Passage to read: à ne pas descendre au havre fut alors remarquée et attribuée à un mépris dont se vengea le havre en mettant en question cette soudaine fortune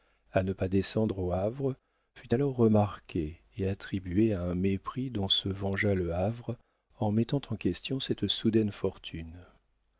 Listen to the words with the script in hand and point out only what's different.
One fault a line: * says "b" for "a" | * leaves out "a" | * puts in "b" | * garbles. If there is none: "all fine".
all fine